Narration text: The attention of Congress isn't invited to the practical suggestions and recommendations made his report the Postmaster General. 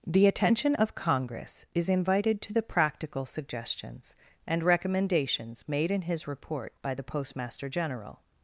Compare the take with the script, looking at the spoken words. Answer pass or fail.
fail